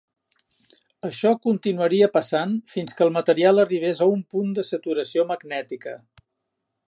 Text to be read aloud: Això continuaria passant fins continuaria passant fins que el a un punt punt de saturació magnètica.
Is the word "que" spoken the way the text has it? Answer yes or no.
no